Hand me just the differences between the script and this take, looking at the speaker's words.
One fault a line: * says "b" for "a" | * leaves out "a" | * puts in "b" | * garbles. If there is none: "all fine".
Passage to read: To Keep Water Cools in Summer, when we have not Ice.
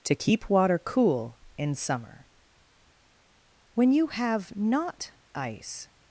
* says "Cool" for "Cools"
* says "you" for "we"